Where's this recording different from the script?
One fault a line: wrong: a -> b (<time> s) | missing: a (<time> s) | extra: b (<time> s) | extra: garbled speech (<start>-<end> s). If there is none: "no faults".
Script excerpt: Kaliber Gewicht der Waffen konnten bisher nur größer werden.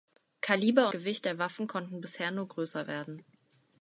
no faults